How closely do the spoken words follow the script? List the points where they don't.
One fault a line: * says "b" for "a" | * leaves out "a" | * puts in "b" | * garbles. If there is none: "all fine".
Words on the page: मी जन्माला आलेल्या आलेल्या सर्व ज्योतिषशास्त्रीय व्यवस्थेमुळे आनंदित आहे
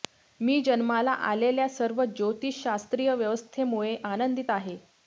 * leaves out "आलेल्या"